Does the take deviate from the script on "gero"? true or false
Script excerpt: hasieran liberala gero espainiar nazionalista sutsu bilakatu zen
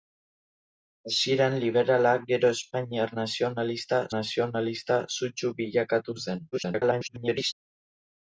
false